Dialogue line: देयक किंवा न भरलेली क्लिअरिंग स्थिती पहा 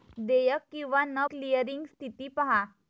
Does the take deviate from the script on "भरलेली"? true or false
true